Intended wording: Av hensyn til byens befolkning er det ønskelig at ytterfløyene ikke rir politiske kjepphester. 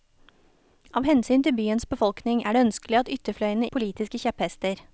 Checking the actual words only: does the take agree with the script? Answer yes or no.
no